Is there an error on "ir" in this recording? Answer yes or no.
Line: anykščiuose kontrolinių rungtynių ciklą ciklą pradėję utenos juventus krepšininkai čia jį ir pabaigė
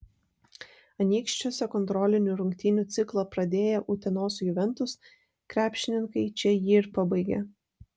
no